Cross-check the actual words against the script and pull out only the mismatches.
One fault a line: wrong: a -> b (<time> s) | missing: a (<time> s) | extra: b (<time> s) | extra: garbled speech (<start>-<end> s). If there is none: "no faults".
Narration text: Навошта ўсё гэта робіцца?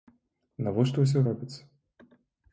missing: гэта (1.2 s)